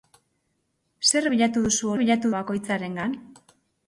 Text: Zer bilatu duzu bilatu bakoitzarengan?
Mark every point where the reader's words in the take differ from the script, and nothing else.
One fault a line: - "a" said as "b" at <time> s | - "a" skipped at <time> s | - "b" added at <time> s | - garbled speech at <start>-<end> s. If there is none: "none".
none